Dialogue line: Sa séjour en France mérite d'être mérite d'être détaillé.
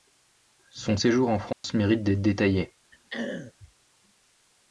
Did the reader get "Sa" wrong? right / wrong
wrong